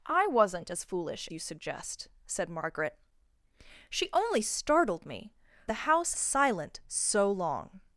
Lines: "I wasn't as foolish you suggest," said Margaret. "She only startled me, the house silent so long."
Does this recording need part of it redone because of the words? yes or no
no